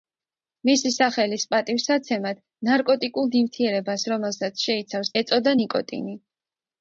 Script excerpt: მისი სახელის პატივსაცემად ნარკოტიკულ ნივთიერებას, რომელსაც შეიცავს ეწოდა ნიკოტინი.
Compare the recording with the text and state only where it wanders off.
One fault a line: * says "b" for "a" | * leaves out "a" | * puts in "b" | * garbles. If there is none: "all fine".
all fine